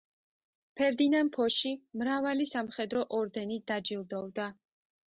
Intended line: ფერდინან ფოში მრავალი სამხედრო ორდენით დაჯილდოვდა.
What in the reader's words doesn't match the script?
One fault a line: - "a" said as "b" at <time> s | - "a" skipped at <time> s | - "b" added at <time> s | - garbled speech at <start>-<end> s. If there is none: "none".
none